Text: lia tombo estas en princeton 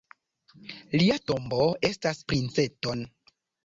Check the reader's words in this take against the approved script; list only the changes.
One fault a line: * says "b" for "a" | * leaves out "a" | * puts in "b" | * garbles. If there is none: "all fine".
* leaves out "en"